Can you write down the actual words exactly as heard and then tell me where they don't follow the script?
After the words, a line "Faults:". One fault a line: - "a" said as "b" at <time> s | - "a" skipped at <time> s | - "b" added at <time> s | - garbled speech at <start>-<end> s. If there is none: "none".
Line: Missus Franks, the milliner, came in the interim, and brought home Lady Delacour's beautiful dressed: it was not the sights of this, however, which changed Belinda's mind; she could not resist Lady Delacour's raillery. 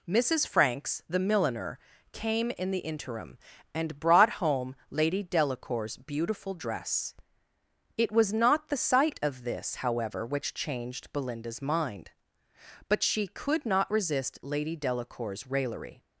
Missus Franks, the milliner, came in the interim, and brought home Lady Delacour's beautiful dress: it was not the sight of this, however, which changed Belinda's mind; but she could not resist Lady Delacour's raillery.
Faults:
- "dressed" said as "dress" at 6.5 s
- "sights" said as "sight" at 8.8 s
- "but" added at 12.9 s